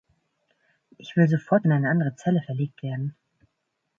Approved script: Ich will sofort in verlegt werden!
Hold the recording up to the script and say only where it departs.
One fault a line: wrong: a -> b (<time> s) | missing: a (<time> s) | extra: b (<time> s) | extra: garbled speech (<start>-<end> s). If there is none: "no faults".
extra: eine andere Zelle (1.7 s)